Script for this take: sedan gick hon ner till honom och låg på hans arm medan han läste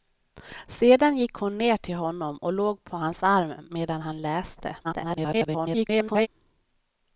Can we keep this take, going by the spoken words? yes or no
no